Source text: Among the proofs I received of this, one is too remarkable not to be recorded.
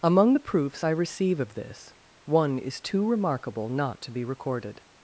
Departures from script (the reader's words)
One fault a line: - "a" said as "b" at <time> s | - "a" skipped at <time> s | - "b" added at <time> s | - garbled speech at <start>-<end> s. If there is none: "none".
- "received" said as "receive" at 0.9 s